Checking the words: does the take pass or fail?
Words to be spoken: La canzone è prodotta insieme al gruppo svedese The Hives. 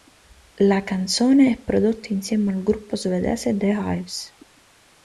pass